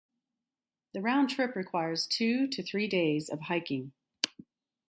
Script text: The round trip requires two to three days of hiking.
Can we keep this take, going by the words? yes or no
yes